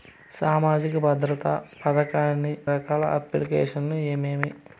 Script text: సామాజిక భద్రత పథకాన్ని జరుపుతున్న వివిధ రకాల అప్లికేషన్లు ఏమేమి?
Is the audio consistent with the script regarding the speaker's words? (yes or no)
no